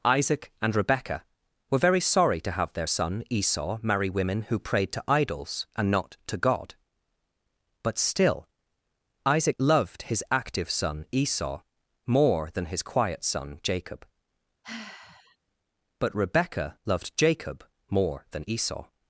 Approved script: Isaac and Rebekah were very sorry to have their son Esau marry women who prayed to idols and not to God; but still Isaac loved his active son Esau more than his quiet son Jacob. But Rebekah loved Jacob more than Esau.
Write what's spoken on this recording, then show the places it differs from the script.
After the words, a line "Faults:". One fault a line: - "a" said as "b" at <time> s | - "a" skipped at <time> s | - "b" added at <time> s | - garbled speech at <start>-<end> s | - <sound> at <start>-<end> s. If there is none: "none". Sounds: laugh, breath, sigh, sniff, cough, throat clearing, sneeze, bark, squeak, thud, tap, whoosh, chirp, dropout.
Isaac and Rebekah were very sorry to have their son Esau marry women who prayed to idols and not to God; but still Isaac loved his active son Esau more than his quiet son Jacob. But Rebekah loved Jacob more than Esau.
Faults:
- sigh at 14.6-15.4 s